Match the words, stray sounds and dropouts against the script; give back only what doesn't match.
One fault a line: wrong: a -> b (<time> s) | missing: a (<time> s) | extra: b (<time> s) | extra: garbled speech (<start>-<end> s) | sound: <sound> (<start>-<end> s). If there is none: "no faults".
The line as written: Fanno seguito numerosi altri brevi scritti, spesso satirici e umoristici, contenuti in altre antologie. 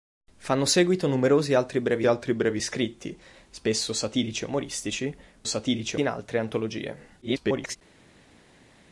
extra: altri brevi (2.0 s)
wrong: contenuti -> satirici (5.4 s)
extra: garbled speech (7.2-7.8 s)